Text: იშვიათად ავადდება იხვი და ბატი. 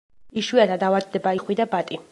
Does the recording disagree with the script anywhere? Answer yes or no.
no